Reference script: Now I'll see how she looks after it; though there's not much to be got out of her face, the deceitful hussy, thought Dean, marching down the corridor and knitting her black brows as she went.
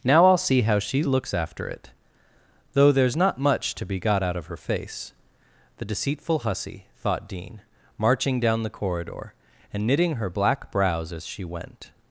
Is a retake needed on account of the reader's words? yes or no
no